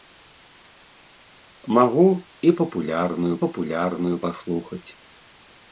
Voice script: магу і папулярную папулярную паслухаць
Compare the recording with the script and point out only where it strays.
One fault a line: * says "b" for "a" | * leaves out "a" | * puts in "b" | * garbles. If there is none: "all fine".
all fine